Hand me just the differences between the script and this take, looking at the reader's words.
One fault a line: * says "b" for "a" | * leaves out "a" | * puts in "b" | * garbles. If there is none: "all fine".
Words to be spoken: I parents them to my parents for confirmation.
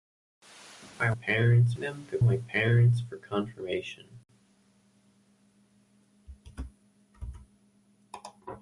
all fine